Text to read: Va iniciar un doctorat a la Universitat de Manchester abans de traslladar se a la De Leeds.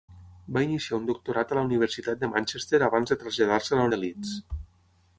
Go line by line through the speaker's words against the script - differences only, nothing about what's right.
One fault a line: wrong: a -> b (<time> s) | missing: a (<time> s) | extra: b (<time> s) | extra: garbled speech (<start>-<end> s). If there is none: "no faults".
no faults